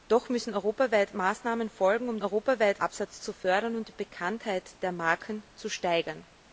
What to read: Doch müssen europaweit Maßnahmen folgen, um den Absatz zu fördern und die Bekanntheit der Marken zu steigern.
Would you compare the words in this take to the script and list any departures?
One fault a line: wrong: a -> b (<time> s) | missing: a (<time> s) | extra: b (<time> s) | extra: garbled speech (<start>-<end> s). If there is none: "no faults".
wrong: den -> europaweit (2.2 s)